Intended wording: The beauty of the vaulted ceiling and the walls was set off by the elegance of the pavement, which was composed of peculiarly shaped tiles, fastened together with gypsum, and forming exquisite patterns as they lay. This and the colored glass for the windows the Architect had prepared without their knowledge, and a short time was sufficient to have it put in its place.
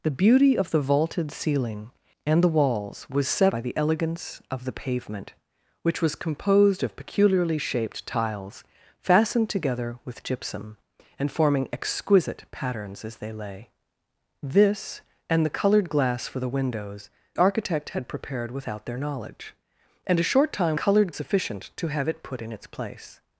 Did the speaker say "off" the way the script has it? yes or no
no